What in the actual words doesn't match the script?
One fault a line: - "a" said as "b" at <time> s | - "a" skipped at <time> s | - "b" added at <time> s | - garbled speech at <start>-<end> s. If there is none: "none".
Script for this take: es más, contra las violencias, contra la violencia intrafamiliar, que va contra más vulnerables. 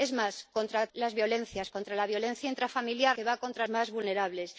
none